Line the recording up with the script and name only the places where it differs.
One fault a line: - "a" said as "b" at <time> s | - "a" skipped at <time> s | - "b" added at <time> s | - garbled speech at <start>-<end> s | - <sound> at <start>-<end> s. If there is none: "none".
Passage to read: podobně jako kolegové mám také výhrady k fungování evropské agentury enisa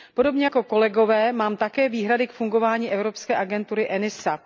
none